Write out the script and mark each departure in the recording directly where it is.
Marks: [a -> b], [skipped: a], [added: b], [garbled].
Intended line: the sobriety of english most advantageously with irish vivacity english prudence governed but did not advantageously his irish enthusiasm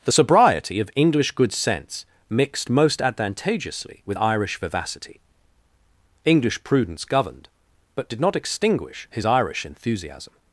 the sobriety of english [added: good sense mixed] most advantageously with irish vivacity english prudence governed but did not [advantageously -> extinguish] his irish enthusiasm